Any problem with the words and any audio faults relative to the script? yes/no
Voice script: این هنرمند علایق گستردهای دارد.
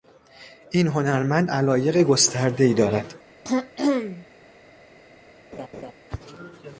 yes